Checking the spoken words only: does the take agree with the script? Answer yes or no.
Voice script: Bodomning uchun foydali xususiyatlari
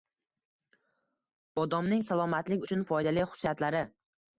no